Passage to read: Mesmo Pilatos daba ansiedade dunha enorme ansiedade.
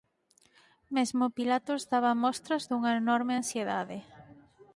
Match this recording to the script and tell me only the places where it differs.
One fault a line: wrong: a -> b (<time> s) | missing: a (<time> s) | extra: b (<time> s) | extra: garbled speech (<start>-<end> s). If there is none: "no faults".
wrong: ansiedade -> mostras (2.2 s)